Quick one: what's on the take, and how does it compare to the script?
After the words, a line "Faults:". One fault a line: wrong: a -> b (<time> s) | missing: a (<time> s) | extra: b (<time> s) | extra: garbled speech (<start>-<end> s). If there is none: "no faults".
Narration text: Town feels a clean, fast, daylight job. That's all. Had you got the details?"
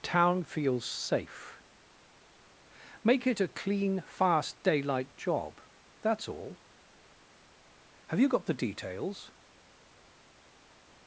Town feels safe. Make it a clean, fast, daylight job. That's all. Have you got the details?"
Faults:
extra: safe Make it (0.8 s)
wrong: Had -> Have (8.1 s)